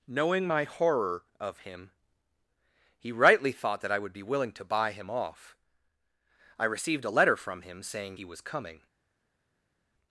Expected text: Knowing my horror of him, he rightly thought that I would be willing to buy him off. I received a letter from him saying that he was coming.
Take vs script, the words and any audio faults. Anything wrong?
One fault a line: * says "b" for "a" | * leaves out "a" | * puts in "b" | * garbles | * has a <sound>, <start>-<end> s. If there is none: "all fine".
* leaves out "that"